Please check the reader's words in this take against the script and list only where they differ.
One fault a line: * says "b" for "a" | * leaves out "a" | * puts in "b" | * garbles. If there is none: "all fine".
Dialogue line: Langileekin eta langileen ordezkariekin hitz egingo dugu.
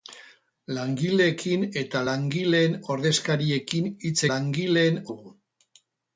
* says "langileen" for "egingo"